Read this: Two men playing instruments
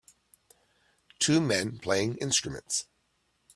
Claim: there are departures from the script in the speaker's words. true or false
false